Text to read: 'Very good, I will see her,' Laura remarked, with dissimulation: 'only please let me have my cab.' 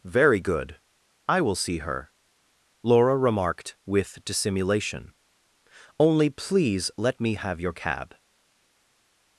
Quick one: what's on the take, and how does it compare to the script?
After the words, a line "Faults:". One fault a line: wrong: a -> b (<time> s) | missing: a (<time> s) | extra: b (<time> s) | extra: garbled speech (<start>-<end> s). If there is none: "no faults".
'Very good, I will see her,' Laura remarked, with dissimulation: 'only please let me have your cab.'
Faults:
wrong: my -> your (7.6 s)